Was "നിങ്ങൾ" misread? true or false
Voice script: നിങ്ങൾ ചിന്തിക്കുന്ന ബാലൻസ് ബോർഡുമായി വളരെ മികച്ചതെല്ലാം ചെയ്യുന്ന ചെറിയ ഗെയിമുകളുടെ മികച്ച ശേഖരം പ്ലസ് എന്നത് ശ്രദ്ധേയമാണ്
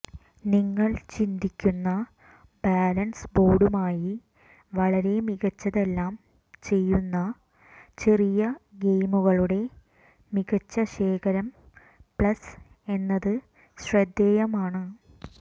false